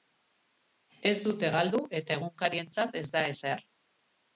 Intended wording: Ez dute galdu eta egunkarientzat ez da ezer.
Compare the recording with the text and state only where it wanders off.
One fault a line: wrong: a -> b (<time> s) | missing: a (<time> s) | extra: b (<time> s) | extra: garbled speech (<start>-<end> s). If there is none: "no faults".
no faults